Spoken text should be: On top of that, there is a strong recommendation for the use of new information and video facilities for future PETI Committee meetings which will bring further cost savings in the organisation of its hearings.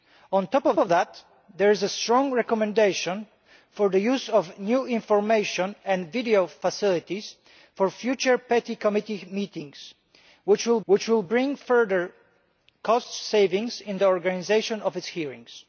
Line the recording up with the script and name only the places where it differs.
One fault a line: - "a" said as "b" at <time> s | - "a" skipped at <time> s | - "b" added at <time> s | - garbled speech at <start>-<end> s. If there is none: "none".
- "of" added at 0.8 s
- "which will" added at 10.8 s